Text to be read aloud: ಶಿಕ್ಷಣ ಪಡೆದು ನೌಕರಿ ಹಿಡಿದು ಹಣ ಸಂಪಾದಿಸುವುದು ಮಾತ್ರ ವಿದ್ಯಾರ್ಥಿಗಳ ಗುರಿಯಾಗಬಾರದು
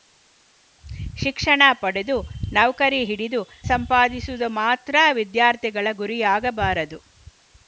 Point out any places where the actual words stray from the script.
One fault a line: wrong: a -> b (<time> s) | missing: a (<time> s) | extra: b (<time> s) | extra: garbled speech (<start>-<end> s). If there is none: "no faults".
missing: ಹಣ (3.4 s)